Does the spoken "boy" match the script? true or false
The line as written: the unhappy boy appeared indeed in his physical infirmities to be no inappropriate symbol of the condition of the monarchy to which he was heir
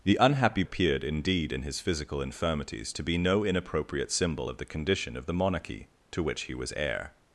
false